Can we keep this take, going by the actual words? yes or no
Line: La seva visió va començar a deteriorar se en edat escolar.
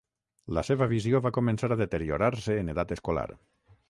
yes